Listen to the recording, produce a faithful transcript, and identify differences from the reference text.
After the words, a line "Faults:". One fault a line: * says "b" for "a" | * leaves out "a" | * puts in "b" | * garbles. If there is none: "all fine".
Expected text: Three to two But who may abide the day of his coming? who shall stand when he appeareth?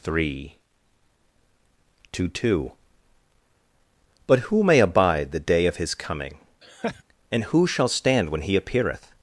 Three to two But who may abide the day of his coming? and who shall stand when he appeareth?
Faults:
* puts in "and"